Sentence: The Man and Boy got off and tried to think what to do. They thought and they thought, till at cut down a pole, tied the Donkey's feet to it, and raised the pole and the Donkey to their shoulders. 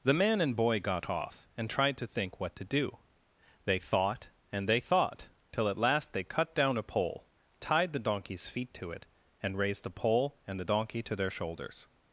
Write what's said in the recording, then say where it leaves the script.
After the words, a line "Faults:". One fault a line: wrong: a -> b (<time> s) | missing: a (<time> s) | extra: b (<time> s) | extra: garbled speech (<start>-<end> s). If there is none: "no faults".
The Man and Boy got off and tried to think what to do. They thought and they thought, till at last they cut down a pole, tied the Donkey's feet to it, and raised the pole and the Donkey to their shoulders.
Faults:
extra: last they (5.8 s)